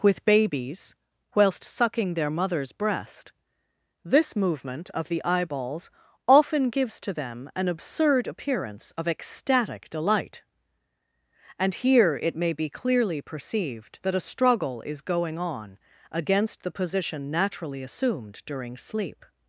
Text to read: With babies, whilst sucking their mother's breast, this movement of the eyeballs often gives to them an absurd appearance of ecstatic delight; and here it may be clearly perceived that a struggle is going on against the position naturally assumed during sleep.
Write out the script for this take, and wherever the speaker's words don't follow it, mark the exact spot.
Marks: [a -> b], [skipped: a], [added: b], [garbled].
With babies, whilst sucking their mother's breast, this movement of the eyeballs often gives to them an absurd appearance of ecstatic delight; and here it may be clearly perceived that a struggle is going on against the position naturally assumed during sleep.